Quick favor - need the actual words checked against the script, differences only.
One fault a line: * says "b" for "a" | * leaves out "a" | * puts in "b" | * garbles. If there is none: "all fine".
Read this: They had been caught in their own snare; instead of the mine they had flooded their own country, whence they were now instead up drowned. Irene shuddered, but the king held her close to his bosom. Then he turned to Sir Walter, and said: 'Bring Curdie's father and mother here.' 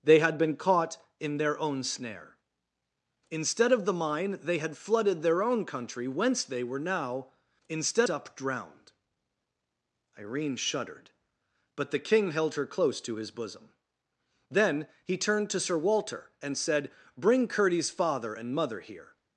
all fine